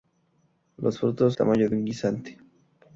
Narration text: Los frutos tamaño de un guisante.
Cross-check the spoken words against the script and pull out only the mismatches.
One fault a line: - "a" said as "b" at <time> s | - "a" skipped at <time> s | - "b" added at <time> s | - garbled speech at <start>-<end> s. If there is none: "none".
none